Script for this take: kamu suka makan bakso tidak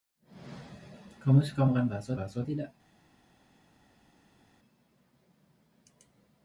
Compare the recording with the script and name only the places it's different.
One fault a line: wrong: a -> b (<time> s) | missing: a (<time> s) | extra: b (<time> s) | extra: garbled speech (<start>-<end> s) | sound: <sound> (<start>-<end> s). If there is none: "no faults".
extra: bakso (2.2 s)